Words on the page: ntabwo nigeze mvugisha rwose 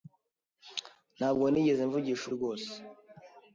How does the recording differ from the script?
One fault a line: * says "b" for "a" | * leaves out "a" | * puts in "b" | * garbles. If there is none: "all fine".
all fine